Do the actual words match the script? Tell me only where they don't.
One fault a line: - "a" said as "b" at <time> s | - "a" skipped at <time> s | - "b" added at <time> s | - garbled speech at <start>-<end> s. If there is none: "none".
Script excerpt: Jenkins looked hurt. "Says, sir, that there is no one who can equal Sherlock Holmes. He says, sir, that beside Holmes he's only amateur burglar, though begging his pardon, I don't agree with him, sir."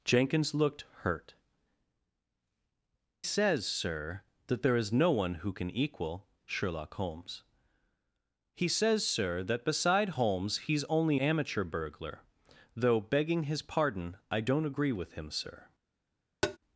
none